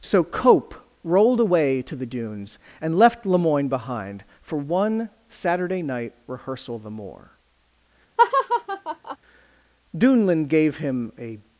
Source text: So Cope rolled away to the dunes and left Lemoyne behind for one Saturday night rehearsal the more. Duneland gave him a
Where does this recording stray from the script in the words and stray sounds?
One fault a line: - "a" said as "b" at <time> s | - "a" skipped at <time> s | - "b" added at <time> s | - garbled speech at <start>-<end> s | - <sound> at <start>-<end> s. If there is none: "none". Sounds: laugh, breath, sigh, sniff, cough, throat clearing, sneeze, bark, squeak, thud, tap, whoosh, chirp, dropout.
- laugh at 8.2-9.2 s